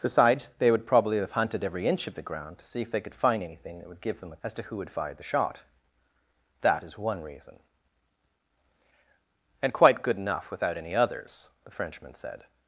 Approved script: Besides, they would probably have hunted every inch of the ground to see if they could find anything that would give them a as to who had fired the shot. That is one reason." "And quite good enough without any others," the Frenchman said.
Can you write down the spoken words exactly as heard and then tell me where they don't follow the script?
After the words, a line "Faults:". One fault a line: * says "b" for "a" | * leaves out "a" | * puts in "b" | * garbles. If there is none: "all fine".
Besides, they would probably have hunted every inch of the ground to see if they could find anything that would give them a as to who had fired the shot. That is one reason." "And quite good enough without any others," the Frenchman said.
Faults:
all fine